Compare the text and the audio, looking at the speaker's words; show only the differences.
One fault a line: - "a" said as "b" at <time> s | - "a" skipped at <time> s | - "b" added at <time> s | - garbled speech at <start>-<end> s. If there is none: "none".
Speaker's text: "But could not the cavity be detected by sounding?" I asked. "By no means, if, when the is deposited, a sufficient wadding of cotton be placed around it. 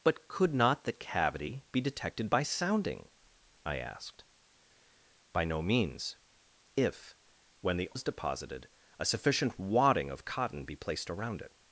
none